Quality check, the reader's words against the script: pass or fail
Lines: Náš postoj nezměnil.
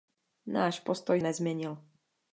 pass